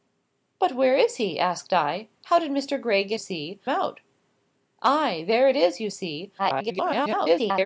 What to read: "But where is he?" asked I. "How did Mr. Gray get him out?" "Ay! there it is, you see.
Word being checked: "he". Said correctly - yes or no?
yes